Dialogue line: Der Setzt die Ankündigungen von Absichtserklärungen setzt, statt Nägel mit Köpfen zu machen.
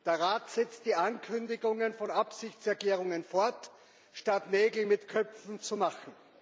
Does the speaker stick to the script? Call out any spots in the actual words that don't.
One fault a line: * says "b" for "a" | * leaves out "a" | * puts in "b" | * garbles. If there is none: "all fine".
* puts in "Rat"
* says "fort" for "setzt"